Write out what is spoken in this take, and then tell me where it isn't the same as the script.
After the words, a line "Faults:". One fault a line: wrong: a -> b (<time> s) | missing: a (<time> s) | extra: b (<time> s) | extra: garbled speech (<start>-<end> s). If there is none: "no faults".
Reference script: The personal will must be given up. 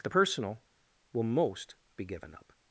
The personal will most be given up.
Faults:
wrong: must -> most (1.2 s)